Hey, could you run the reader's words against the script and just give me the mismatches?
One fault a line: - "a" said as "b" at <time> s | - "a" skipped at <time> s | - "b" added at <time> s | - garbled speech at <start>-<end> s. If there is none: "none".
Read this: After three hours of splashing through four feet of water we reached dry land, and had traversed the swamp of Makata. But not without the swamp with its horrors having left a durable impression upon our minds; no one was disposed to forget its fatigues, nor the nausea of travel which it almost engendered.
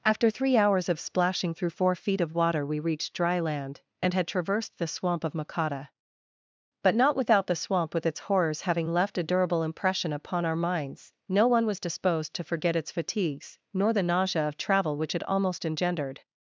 none